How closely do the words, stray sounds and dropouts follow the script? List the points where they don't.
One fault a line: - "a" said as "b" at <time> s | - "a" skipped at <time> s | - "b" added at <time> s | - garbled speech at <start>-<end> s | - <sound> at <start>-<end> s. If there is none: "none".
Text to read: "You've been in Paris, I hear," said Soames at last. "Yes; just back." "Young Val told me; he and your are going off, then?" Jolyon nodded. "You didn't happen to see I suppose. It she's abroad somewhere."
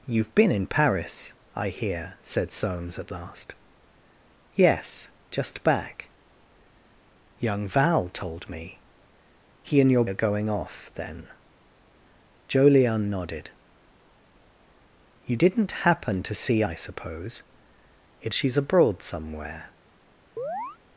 - chirp at 20.4-20.8 s